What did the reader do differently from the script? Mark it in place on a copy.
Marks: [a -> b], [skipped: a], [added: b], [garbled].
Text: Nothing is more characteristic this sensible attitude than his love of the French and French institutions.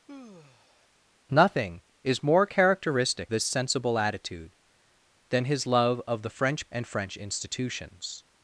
Nothing is more characteristic this sensible attitude than his love of the French and French institutions.